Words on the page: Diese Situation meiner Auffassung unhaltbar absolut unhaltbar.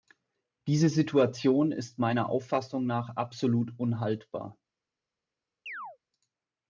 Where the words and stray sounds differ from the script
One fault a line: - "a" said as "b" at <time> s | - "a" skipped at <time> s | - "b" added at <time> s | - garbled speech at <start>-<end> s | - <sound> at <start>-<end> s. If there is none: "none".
- "ist" added at 1.7 s
- "unhaltbar" said as "nach" at 2.9 s
- chirp at 5.7-6.0 s